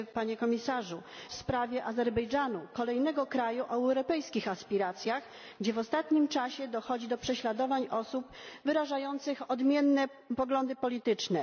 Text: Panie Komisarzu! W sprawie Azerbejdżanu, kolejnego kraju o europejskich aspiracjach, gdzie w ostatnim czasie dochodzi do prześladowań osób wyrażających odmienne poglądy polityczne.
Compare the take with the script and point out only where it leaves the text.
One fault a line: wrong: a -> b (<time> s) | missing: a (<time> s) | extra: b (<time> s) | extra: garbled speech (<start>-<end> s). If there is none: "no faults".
no faults